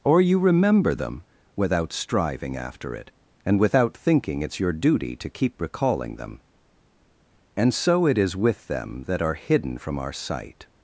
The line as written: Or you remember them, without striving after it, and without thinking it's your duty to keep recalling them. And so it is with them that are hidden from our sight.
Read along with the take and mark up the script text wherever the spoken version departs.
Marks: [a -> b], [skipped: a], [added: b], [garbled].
Or you remember them, without striving after it, and without thinking it's your duty to keep recalling them. And so it is with them that are hidden from our sight.